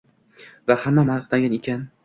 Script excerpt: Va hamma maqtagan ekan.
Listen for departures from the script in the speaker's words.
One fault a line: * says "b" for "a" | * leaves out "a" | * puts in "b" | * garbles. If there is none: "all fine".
all fine